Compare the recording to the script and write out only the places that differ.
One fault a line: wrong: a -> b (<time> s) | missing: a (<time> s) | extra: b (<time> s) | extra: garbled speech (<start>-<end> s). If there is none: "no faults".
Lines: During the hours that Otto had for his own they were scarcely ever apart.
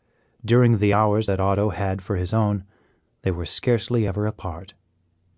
no faults